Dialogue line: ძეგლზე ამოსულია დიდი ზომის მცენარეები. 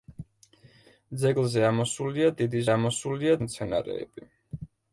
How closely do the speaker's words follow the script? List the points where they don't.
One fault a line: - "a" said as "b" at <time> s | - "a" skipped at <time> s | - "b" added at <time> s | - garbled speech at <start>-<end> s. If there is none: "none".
- "ზომის" said as "ამოსულია" at 2.7 s